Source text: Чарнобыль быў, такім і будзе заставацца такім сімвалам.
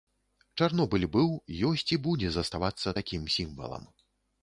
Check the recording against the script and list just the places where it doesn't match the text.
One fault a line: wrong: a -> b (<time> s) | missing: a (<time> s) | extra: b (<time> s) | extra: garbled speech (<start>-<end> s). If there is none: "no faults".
wrong: такім -> ёсць (1.7 s)